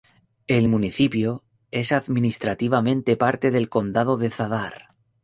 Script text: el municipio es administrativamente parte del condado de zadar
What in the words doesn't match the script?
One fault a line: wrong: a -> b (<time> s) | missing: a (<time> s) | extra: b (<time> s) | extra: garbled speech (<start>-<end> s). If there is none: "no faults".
no faults